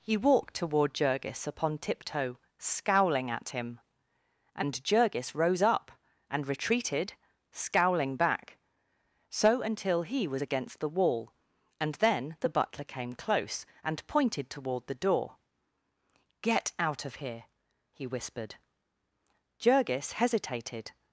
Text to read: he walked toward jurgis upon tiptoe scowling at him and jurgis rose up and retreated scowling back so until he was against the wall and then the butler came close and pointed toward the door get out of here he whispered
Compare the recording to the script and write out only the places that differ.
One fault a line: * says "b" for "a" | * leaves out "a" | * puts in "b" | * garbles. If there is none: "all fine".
* puts in "jurgis hesitated"